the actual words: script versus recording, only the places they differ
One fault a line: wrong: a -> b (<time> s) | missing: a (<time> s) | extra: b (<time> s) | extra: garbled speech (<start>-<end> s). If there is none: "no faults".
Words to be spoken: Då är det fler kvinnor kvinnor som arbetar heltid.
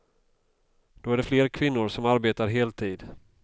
missing: kvinnor (1.9 s)